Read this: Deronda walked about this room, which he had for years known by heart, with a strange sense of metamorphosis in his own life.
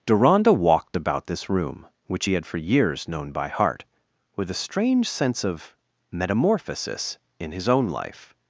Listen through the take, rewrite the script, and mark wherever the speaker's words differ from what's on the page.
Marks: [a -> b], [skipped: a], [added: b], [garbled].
Deronda walked about this room, which he had for years known by heart, with a strange sense of metamorphosis in his own life.